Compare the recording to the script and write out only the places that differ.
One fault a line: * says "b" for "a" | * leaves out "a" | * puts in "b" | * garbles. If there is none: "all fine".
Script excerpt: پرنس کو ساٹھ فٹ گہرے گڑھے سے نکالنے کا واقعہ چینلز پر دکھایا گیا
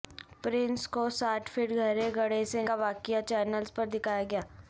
* leaves out "نکالنے"